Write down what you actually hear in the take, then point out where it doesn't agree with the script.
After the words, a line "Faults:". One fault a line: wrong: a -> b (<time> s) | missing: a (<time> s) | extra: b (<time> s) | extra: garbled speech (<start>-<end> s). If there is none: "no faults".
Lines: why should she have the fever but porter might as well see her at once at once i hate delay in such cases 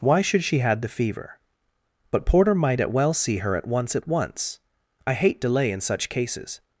why should she had the fever but porter might at well see her at once at once i hate delay in such cases
Faults:
wrong: have -> had (0.6 s)
wrong: as -> at (2.8 s)